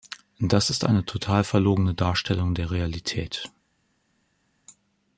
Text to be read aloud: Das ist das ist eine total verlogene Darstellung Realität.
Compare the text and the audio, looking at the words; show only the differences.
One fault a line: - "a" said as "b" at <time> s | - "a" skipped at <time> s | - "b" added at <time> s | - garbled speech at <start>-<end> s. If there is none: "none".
- "das ist" skipped at 0.8 s
- "der" added at 2.5 s